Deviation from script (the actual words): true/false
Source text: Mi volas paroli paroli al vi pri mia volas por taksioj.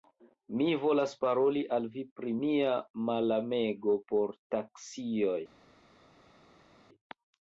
true